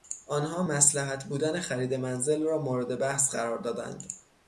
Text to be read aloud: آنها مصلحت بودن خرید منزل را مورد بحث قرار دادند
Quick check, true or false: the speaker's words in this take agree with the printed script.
true